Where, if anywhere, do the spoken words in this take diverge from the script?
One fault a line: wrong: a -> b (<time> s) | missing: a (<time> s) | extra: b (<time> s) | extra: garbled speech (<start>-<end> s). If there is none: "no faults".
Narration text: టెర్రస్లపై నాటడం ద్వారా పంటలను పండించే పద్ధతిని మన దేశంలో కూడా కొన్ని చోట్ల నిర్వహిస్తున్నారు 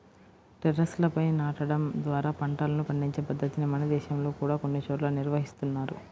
no faults